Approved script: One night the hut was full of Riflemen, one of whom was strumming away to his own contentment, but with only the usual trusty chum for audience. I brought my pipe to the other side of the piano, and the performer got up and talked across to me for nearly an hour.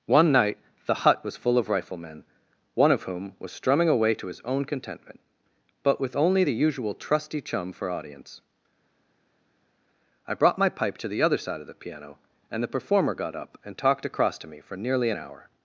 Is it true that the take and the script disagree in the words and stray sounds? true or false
false